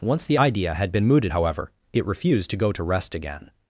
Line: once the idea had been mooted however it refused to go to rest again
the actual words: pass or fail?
pass